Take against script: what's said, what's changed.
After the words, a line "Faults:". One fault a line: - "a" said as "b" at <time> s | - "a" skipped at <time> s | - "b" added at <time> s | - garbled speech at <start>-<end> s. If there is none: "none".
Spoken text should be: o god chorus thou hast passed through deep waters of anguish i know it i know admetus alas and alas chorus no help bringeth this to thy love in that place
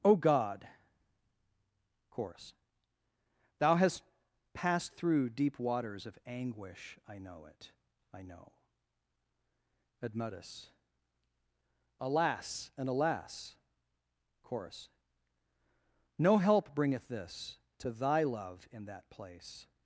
o god chorus thou hast passed through deep waters of anguish i know it i know admetus alas and alas chorus no help bringeth this to thy love in that place
Faults:
none